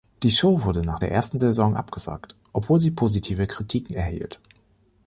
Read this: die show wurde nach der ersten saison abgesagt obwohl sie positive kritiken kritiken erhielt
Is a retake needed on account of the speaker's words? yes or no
yes